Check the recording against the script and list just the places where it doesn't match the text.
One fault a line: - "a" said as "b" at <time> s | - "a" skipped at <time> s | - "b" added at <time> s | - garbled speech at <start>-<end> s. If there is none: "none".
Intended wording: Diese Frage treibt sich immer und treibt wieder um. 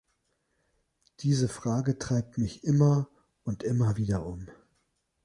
- "sich" said as "mich" at 2.4 s
- "treibt" said as "immer" at 3.6 s